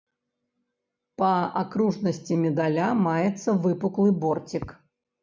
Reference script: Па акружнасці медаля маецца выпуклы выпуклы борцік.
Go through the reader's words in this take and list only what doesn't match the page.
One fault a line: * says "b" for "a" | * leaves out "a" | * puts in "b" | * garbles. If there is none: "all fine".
* leaves out "выпуклы"